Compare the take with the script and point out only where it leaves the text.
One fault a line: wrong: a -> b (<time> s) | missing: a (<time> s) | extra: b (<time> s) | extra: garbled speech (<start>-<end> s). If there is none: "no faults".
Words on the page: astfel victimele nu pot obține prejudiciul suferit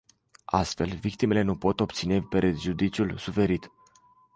no faults